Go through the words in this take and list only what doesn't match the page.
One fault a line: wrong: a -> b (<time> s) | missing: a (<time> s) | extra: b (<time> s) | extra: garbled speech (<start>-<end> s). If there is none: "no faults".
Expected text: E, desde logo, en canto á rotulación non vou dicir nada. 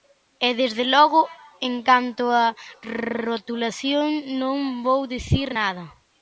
no faults